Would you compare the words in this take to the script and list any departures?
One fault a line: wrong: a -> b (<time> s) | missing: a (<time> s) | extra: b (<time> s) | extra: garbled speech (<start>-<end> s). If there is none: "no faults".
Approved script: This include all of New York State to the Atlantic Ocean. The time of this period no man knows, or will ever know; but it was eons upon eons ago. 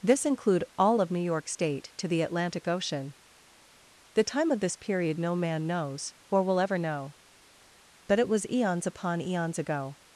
no faults